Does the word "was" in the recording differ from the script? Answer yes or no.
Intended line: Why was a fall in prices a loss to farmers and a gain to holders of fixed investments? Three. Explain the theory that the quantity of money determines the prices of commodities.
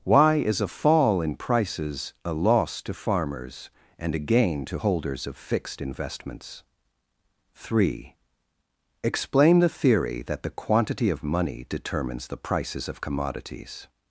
yes